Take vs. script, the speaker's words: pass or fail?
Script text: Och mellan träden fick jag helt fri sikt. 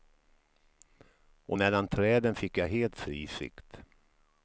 pass